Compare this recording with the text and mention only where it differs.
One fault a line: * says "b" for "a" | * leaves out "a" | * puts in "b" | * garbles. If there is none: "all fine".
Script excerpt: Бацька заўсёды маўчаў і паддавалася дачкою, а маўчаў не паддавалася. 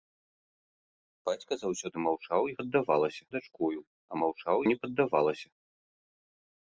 all fine